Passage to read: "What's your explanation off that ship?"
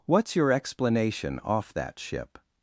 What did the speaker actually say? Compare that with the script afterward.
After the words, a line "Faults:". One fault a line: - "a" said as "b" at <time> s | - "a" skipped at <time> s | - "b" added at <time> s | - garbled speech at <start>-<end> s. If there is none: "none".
"What's your explanation off that ship?"
Faults:
none